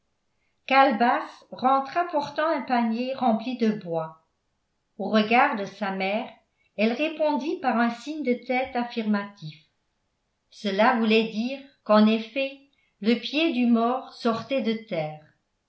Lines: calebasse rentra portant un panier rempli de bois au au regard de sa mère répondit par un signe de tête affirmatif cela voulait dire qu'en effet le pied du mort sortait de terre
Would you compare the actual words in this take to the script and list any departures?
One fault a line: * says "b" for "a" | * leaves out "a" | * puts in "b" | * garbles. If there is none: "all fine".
* leaves out "au"
* puts in "elle"